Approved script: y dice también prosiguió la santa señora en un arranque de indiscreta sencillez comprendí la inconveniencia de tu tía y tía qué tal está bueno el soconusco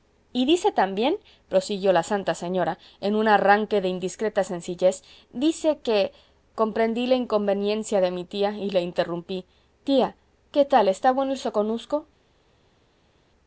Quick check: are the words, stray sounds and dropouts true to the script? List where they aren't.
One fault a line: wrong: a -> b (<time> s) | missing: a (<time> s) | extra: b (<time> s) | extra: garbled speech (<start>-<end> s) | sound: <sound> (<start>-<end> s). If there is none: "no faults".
extra: dice que (5.3 s)
wrong: tu -> mi (8.1 s)
extra: la interrumpí (8.7 s)